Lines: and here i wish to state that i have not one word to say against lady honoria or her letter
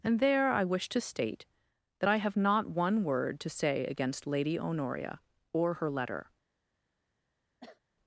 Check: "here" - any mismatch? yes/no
yes